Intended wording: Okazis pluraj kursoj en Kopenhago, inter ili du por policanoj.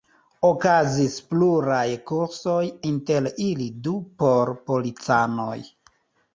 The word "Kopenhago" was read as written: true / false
false